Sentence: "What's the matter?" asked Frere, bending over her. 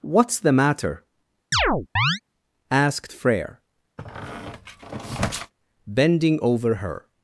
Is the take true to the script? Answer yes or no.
yes